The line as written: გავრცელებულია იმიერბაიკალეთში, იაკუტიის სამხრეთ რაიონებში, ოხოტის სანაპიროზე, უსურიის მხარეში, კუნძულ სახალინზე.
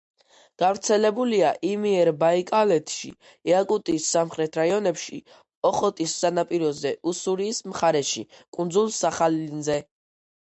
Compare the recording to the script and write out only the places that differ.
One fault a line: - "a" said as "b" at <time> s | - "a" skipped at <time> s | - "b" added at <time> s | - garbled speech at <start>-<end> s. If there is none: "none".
none